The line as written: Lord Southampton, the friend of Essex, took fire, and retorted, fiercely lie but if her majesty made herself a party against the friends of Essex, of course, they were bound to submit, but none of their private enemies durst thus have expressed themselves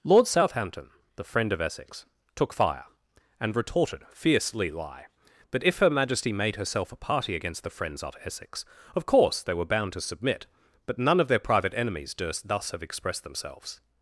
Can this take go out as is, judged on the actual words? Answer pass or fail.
pass